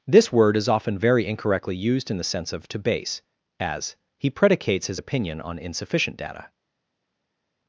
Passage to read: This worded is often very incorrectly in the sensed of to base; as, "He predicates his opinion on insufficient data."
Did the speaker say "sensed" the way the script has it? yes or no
no